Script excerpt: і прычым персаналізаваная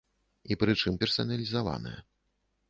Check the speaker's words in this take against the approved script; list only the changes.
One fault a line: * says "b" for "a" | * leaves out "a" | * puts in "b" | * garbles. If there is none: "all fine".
all fine